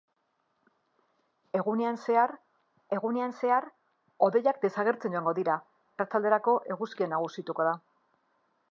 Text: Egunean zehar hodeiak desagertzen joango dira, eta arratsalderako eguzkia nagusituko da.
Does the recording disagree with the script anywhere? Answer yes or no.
yes